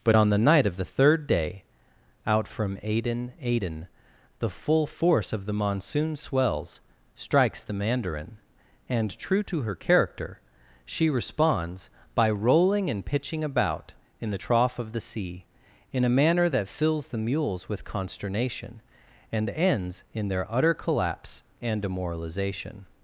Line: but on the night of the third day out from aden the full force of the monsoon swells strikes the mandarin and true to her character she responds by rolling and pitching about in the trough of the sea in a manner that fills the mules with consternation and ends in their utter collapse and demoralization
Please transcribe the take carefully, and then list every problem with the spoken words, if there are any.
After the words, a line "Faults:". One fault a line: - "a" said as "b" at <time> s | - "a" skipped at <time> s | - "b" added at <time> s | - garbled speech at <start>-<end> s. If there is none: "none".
but on the night of the third day out from aden aden the full force of the monsoon swells strikes the mandarin and true to her character she responds by rolling and pitching about in the trough of the sea in a manner that fills the mules with consternation and ends in their utter collapse and demoralization
Faults:
- "aden" added at 3.4 s